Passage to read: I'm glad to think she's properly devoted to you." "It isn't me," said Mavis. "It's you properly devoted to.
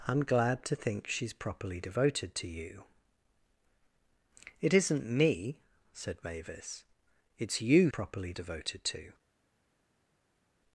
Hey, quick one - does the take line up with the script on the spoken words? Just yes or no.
yes